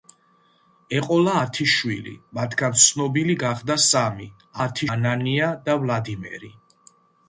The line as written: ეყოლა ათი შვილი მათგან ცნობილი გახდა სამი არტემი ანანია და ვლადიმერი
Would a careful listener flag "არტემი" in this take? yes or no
yes